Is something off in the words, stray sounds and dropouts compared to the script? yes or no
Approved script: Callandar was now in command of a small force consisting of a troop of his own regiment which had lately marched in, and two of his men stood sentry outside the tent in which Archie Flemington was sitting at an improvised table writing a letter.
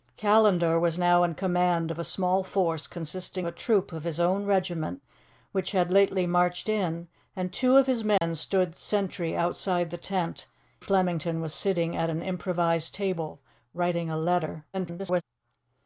yes